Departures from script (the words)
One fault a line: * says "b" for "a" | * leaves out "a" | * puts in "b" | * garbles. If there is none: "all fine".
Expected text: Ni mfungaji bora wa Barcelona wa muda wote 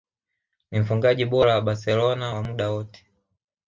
all fine